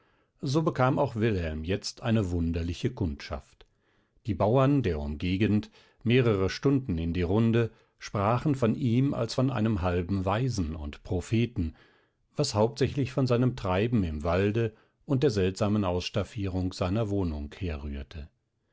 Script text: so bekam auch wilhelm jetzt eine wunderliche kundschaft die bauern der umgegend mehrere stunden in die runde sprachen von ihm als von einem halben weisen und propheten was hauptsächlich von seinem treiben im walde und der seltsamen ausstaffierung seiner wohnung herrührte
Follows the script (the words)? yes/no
yes